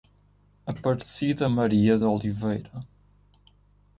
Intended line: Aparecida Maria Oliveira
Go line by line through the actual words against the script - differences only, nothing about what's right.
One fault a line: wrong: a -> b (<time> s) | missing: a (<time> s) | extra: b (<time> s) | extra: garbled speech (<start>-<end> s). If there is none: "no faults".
no faults